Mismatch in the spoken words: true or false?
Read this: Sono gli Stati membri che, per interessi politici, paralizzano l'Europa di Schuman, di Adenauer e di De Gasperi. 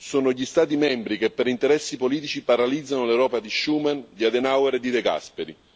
false